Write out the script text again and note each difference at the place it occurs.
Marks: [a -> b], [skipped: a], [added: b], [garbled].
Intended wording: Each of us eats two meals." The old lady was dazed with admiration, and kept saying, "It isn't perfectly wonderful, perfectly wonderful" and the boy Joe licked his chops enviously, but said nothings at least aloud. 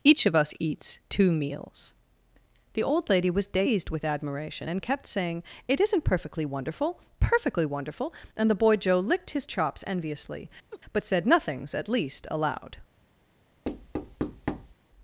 Each of us eats two meals." The old lady was dazed with admiration, and kept saying, "It isn't perfectly wonderful, perfectly wonderful" and the boy Joe licked his chops enviously, but said nothings at least aloud.